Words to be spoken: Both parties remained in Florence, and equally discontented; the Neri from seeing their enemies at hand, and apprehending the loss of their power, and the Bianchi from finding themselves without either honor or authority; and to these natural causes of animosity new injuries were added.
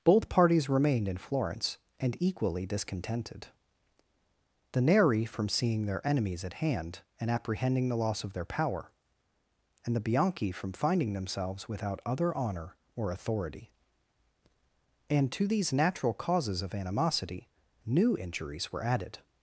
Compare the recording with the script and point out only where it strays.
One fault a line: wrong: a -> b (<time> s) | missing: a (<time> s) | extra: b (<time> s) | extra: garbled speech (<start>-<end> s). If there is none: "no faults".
wrong: either -> other (12.0 s)